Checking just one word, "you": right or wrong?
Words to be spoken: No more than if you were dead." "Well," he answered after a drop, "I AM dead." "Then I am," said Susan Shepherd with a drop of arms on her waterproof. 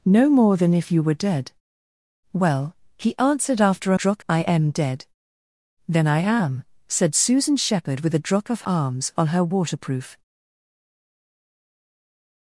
right